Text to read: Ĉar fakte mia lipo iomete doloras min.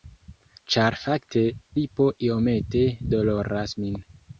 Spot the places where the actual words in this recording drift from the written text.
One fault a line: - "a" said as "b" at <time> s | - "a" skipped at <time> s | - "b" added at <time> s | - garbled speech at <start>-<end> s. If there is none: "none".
- "mia" skipped at 1.4 s